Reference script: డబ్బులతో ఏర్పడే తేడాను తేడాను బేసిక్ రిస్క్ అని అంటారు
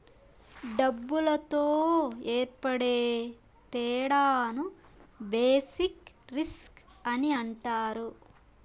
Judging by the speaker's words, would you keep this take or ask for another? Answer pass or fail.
fail